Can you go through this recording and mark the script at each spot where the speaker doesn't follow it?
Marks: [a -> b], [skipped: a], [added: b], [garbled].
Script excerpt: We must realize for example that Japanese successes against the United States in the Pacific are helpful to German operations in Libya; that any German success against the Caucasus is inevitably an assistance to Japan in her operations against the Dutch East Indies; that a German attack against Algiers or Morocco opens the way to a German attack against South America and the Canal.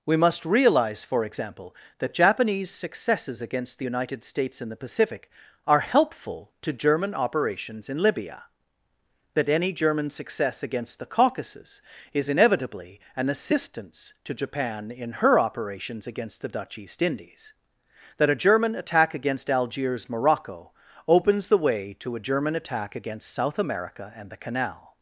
We must realize for example that Japanese successes against the United States in the Pacific are helpful to German operations in Libya; that any German success against the Caucasus is inevitably an assistance to Japan in her operations against the Dutch East Indies; that a German attack against Algiers [skipped: or] Morocco opens the way to a German attack against South America and the Canal.